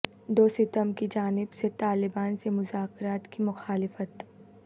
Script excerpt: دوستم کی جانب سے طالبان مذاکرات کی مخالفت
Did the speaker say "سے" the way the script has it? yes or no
yes